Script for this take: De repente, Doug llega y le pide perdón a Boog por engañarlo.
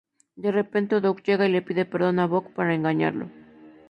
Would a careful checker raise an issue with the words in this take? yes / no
no